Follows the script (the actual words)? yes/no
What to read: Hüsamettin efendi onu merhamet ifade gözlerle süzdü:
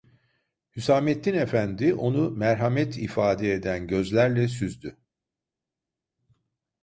no